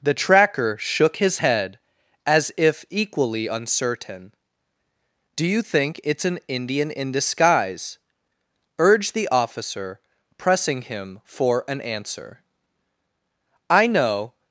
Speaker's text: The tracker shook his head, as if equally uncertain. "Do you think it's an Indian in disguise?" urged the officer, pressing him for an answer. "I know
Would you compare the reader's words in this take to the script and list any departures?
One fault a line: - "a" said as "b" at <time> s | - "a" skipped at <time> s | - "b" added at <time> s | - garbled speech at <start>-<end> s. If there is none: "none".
none